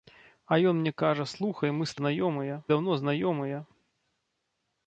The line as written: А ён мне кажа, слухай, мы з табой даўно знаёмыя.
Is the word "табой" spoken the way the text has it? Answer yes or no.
no